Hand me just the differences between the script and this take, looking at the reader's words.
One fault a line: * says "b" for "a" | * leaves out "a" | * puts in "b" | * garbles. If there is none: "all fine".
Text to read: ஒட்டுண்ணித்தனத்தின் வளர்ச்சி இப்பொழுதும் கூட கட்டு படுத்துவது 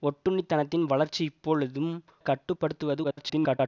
* leaves out "கூட"
* garbles